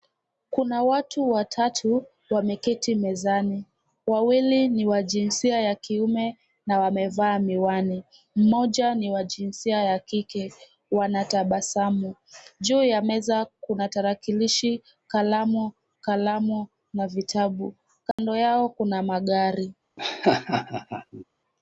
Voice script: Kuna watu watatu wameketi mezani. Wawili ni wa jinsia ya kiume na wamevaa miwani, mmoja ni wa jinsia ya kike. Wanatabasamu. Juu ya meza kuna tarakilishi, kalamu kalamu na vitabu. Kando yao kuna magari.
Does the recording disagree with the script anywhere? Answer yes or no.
no